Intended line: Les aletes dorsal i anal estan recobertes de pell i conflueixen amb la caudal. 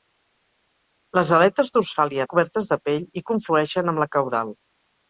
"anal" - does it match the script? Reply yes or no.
no